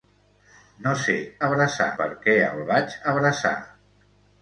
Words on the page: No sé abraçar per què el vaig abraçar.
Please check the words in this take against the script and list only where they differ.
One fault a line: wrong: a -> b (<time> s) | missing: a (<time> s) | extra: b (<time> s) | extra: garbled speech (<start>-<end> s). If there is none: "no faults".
no faults